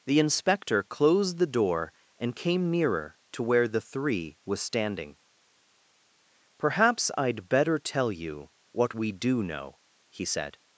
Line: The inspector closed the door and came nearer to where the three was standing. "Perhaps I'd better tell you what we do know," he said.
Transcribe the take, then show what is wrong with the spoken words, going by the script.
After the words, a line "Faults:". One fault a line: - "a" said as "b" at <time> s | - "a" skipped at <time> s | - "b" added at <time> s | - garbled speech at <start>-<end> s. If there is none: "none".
The inspector closed the door and came nearer to where the three was standing. "Perhaps I'd better tell you what we do know," he said.
Faults:
none